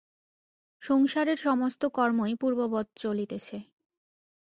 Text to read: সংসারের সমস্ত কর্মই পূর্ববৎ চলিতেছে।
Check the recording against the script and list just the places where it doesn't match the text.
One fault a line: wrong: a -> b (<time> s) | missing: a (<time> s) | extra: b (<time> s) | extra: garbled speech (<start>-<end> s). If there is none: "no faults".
no faults